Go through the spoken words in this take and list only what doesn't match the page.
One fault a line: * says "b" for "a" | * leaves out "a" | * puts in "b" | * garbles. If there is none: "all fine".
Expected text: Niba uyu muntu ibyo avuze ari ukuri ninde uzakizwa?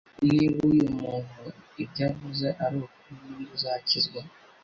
all fine